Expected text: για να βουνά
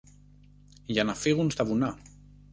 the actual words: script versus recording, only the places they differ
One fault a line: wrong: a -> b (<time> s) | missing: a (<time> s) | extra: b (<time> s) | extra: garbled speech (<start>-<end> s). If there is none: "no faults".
extra: φύγουν στα (1.1 s)